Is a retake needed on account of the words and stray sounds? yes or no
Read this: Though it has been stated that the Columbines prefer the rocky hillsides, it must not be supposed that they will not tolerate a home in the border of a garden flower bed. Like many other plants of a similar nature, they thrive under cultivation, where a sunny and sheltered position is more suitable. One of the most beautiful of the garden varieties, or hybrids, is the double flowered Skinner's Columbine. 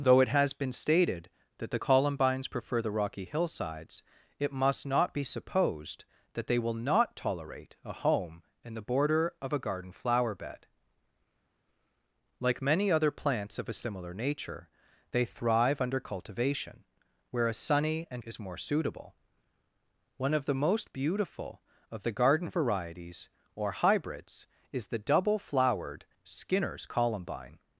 yes